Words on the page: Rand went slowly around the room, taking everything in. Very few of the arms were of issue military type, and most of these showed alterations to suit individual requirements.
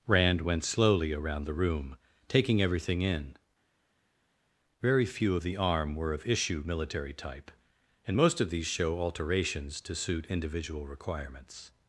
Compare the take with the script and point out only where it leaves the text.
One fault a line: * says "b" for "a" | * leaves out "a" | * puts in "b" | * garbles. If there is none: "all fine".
* says "arm" for "arms"
* says "show" for "showed"